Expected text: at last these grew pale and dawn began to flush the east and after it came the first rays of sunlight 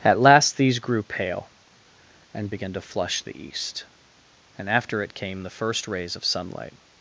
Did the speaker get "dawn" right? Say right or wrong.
wrong